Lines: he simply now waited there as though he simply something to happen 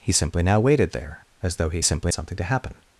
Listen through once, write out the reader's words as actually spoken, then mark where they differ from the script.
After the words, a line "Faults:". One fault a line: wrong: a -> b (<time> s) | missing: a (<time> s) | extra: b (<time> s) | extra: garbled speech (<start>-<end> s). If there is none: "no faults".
he simply now waited there as though he simply something to happen
Faults:
no faults